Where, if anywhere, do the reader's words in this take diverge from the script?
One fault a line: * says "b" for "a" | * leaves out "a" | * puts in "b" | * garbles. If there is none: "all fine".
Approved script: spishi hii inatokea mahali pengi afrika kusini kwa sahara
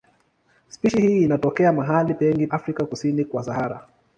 all fine